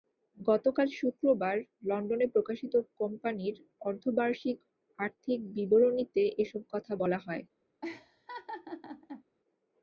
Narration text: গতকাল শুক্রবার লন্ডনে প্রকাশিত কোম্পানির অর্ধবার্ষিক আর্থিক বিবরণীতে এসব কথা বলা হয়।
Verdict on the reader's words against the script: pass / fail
pass